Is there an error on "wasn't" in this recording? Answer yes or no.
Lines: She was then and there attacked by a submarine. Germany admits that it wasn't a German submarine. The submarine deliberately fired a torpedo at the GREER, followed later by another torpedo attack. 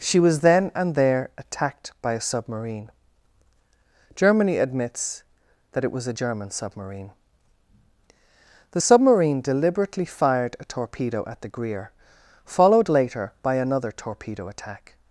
yes